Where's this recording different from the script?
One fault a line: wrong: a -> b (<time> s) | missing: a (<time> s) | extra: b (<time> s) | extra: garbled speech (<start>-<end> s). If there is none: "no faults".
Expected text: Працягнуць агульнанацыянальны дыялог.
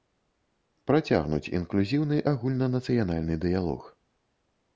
extra: інклюзіўны (1.6 s)